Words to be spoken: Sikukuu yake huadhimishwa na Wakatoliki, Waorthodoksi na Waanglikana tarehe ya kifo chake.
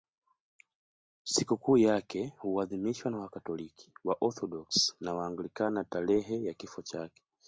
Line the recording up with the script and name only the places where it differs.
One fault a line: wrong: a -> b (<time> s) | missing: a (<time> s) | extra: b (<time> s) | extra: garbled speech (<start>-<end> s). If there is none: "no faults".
no faults